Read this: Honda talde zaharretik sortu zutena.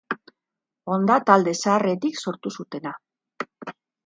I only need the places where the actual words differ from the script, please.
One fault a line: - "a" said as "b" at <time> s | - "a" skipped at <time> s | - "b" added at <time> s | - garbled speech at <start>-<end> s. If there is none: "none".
none